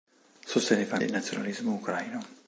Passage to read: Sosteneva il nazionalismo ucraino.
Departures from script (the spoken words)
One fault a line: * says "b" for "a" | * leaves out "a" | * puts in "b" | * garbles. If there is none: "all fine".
all fine